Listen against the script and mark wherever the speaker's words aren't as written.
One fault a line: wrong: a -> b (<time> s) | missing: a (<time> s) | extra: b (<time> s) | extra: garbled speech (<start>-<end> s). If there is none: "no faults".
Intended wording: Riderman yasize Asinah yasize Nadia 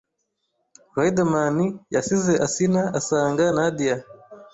wrong: yasize -> asanga (3.0 s)